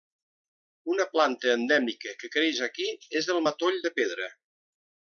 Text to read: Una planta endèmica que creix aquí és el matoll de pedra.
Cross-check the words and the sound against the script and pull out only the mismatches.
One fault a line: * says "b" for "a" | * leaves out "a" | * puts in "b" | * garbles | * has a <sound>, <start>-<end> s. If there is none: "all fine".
all fine